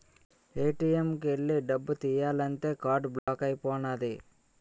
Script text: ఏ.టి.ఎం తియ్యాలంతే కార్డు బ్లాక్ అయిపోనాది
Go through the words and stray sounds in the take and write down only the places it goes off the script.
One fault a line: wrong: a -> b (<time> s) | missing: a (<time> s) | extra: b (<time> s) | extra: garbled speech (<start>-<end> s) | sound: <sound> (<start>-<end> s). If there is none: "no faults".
extra: కు ఎల్లి డబ్బు (1.1 s)
sound: dropout (3.2-3.3 s)